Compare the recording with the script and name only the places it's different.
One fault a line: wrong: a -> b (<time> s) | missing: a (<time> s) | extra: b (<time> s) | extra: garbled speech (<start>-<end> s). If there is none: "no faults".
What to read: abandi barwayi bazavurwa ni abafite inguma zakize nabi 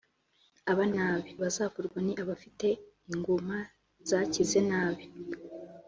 wrong: barwayi -> nabi (1.0 s)